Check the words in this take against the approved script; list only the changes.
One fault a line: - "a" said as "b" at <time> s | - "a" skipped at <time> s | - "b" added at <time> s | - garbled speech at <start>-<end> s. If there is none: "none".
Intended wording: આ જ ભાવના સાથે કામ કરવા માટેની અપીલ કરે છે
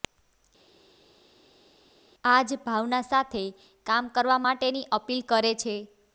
none